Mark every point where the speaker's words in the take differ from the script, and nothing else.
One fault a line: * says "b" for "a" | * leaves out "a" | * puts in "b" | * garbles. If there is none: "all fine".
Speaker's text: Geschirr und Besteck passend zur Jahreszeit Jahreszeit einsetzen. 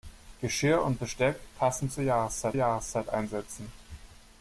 all fine